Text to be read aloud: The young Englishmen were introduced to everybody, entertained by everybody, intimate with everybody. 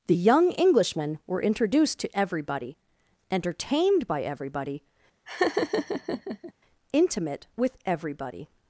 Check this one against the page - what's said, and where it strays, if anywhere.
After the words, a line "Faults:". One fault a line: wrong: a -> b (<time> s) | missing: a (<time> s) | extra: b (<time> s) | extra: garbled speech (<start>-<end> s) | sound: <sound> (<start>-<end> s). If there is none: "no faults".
The young Englishmen were introduced to everybody, entertained by everybody, intimate with everybody.
Faults:
sound: laugh (5.3-6.5 s)